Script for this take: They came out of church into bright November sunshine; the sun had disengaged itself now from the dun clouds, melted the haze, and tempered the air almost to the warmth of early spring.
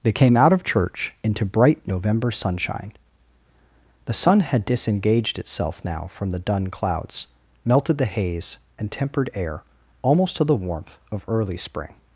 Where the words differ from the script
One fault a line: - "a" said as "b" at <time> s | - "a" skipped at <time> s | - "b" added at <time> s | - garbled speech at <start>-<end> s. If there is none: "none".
- "the" skipped at 9.3 s